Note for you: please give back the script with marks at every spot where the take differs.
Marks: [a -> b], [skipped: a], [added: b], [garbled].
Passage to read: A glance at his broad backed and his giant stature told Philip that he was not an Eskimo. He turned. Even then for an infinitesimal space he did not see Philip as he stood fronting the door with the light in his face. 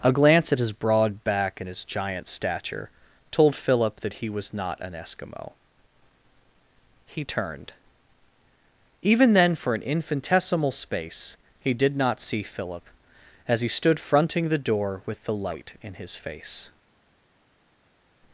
A glance at his broad [backed -> back] and his giant stature told Philip that he was not an Eskimo. He turned. Even then for an infinitesimal space he did not see Philip as he stood fronting the door with the light in his face.